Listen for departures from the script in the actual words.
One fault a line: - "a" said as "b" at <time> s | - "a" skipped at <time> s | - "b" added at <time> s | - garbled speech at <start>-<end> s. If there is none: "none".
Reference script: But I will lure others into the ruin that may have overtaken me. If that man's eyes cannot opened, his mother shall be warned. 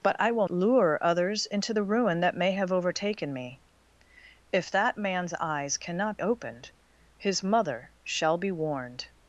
none